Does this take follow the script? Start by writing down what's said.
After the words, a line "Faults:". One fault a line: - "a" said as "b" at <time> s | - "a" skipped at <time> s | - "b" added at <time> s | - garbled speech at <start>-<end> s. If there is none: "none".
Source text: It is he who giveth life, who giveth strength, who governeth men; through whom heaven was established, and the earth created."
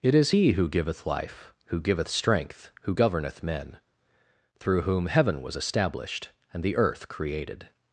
It is he who giveth life, who giveth strength, who governeth men; through whom heaven was established, and the earth created."
Faults:
none